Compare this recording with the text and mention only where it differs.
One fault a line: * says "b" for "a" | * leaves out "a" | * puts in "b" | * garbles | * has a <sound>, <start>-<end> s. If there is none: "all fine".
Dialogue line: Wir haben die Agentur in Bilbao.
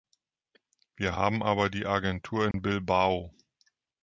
* puts in "aber"
* has a dropout, 2.5-2.5 s